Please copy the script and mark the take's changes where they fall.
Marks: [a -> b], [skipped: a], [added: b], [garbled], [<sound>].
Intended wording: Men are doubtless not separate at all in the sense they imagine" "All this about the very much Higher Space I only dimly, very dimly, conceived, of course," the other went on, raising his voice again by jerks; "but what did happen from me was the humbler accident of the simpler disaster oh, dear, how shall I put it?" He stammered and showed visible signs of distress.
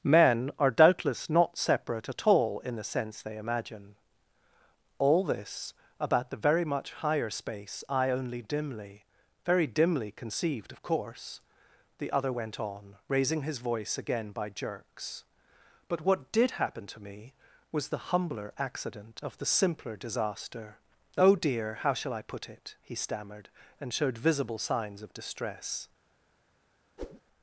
Men are doubtless not separate at all in the sense they imagine" "All this about the very much Higher Space I only dimly, very dimly, conceived, of course," the other went on, raising his voice again by jerks; "but what did happen [from -> to] me was the humbler accident of the simpler disaster oh, dear, how shall I put it?" He stammered and showed visible signs of distress. [whoosh]